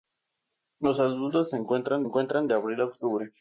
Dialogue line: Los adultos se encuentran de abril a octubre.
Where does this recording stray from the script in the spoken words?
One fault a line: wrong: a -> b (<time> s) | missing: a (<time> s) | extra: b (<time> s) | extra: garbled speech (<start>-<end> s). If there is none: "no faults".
extra: encuentran (2.0 s)